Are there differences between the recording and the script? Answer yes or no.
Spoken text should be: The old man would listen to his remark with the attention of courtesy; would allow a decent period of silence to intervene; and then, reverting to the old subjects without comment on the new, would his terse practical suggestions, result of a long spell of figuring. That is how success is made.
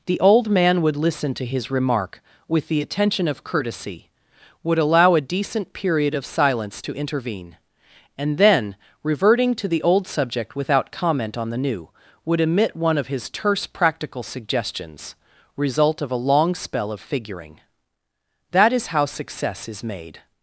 yes